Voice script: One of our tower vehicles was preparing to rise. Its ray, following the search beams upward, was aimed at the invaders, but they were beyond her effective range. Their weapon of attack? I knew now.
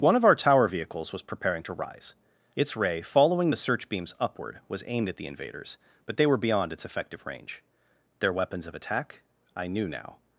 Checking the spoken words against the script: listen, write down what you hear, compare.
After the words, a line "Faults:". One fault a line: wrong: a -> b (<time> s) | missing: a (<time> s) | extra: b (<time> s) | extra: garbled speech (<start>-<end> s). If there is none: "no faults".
One of our tower vehicles was preparing to rise. Its ray, following the search beams upward, was aimed at the invaders, but they were beyond its effective range. Their weapons of attack? I knew now.
Faults:
wrong: her -> its (6.7 s)
wrong: weapon -> weapons (8.3 s)